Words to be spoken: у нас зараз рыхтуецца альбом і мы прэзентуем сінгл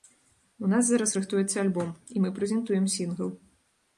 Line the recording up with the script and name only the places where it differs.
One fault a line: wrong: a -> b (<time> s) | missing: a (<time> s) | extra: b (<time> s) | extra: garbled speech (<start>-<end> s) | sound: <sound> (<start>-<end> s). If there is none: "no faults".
no faults